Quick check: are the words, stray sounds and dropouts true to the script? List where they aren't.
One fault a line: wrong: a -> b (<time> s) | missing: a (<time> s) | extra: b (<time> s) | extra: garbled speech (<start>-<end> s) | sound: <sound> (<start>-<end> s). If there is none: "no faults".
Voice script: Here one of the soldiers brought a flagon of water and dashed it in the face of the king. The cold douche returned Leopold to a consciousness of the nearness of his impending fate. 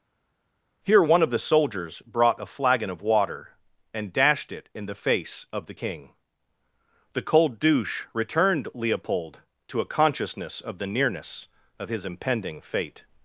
no faults